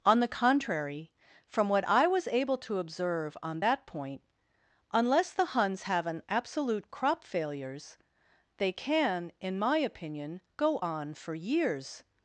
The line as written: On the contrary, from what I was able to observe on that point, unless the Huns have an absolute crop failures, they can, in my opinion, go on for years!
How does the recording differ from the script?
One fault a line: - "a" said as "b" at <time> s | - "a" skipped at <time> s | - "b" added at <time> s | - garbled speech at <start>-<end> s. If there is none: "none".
none